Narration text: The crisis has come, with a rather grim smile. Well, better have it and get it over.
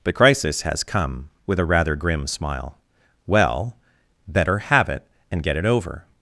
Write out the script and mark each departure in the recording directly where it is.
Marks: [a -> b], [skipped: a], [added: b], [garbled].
The crisis has come, with a rather grim smile. Well, better have it and get it over.